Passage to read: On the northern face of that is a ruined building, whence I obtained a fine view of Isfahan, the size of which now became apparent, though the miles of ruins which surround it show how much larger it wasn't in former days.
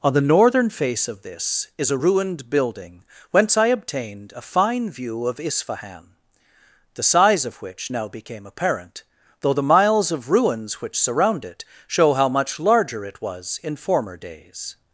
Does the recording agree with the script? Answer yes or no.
no